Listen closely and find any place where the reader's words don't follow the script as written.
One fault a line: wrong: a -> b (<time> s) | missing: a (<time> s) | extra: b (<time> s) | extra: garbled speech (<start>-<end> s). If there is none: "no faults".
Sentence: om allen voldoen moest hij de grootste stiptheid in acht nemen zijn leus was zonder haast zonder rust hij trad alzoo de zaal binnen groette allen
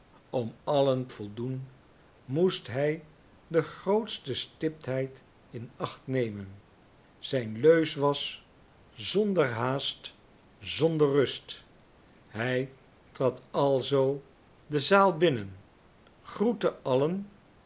no faults